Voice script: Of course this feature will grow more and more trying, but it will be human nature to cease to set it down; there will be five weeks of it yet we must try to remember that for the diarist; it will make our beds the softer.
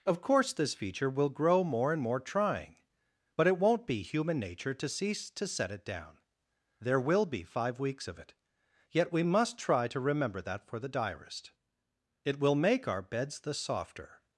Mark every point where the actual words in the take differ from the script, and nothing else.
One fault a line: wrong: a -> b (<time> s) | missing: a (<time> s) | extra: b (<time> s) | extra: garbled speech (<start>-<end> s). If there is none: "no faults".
wrong: will -> won't (3.6 s)